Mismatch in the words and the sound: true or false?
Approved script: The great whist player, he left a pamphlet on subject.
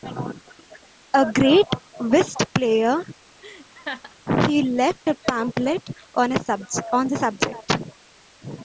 true